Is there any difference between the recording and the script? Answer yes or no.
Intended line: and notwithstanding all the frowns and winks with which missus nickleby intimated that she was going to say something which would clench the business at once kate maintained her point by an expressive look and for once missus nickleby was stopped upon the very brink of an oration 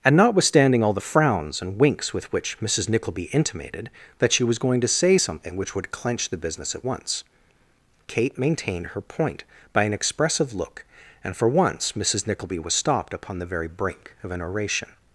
no